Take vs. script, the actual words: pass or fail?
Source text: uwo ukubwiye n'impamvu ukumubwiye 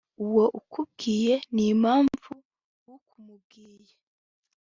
pass